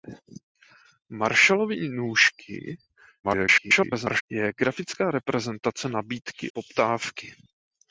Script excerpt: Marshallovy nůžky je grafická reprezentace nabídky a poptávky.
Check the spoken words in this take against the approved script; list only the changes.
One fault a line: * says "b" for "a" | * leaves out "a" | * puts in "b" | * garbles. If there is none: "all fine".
* garbles
* leaves out "a"